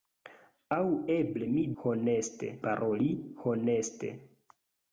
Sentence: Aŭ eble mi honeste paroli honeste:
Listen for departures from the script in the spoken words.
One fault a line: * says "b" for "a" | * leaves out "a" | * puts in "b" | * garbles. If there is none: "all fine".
all fine